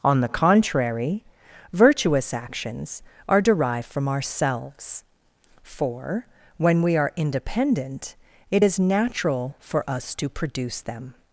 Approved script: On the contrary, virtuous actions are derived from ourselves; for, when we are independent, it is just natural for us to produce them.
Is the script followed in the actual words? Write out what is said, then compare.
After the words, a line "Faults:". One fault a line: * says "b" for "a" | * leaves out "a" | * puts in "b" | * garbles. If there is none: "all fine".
On the contrary, virtuous actions are derived from ourselves; for, when we are independent, it is natural for us to produce them.
Faults:
* leaves out "just"